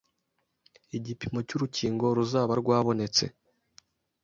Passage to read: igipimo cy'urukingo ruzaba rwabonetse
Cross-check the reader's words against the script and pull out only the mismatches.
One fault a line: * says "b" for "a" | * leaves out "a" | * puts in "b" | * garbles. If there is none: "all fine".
all fine